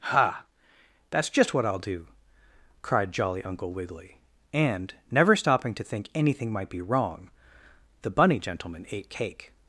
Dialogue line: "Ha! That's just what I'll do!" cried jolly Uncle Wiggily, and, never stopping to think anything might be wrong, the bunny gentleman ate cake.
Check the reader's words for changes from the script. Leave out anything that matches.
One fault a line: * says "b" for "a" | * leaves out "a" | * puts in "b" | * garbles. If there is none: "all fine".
all fine